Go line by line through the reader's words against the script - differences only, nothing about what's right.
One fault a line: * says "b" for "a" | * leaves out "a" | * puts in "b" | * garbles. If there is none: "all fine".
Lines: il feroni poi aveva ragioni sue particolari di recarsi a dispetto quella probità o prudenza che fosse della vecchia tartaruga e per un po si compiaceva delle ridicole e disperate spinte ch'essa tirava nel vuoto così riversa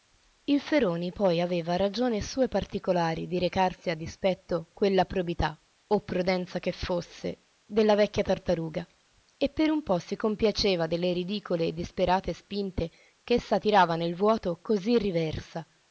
all fine